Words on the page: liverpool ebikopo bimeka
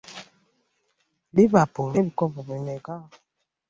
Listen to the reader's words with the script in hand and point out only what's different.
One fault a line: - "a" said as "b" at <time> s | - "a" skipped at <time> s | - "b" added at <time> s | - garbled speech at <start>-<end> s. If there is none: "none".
none